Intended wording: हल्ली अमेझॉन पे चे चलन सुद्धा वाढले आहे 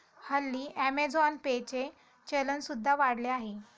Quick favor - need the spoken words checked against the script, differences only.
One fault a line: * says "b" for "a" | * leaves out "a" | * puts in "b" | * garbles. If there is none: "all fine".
all fine